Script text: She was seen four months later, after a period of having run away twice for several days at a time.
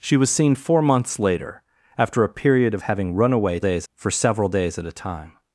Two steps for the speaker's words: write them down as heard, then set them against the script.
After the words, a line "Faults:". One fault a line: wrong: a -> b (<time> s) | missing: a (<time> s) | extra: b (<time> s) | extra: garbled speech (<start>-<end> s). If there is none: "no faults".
She was seen four months later, after a period of having run away days for several days at a time.
Faults:
wrong: twice -> days (3.6 s)